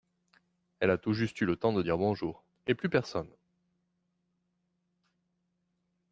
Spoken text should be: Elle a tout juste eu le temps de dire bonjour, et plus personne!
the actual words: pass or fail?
pass